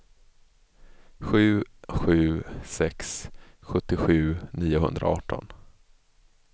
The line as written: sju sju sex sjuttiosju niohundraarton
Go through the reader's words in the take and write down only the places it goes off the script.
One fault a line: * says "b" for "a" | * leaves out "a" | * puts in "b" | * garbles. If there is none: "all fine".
all fine